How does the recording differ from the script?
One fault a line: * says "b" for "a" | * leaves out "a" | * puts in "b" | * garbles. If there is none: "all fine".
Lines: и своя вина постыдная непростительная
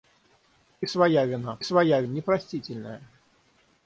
* says "своя" for "постыдная"